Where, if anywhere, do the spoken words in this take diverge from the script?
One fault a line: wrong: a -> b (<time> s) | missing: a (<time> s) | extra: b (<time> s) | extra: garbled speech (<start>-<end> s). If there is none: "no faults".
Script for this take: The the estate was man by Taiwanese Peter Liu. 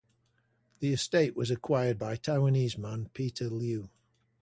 missing: the (0.9 s)
wrong: man -> acquired (1.5 s)
extra: man (2.8 s)